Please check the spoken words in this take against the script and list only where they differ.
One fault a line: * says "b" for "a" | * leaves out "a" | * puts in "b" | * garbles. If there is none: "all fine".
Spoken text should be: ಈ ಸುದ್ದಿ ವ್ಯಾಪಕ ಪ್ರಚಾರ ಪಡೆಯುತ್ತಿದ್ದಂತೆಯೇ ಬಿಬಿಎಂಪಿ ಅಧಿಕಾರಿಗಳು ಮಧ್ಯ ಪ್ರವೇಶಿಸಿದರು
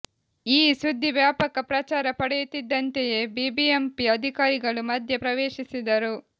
all fine